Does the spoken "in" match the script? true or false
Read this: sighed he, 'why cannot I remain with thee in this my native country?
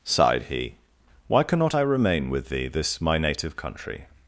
false